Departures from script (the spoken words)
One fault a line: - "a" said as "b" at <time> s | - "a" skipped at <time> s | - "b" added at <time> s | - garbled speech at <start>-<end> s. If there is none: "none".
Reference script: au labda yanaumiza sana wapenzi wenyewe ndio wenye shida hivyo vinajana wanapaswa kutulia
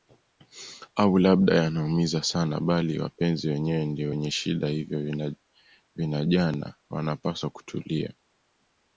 - "bali" added at 2.6 s